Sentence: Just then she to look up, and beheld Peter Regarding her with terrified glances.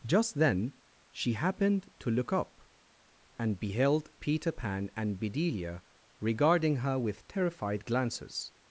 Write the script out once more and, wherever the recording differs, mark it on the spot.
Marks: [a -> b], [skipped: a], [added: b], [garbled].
Just then she [added: happened] to look up, and beheld Peter [added: Pan and Bedelia] Regarding her with terrified glances.